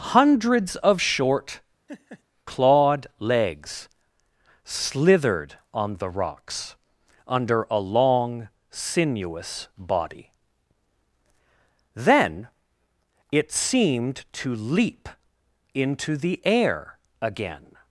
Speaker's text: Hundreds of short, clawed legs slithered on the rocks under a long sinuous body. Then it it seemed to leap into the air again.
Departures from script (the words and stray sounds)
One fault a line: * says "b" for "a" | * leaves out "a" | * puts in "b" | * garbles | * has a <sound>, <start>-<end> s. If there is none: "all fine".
* has a laugh, 1.9-2.2 s
* leaves out "it"